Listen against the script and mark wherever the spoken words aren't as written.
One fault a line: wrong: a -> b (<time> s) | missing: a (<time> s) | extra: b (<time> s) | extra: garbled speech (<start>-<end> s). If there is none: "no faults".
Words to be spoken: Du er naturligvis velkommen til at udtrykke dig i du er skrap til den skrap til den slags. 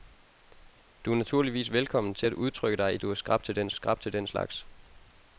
no faults